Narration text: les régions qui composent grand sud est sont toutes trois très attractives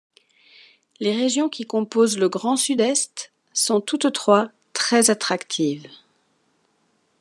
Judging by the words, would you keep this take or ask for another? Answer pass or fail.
fail